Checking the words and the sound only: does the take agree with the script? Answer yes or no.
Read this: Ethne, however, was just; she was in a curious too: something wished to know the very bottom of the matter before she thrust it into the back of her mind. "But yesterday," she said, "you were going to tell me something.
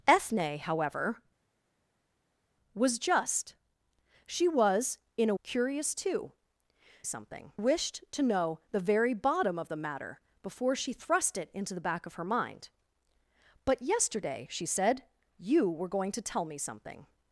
yes